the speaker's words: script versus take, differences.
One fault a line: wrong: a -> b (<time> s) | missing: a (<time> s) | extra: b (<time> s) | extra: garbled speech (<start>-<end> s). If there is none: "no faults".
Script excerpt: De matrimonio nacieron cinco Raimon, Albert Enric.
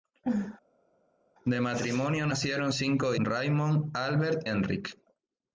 no faults